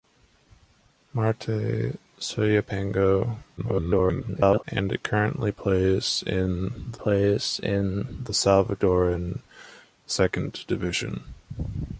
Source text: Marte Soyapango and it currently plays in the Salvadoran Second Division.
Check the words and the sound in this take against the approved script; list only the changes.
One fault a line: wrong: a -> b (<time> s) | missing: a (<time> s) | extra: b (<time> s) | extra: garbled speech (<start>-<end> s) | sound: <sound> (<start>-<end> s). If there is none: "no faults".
extra: garbled speech (3.6-4.6 s)
extra: plays in the (6.9 s)